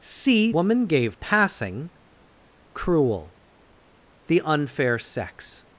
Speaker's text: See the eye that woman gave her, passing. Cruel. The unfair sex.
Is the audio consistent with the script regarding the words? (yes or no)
no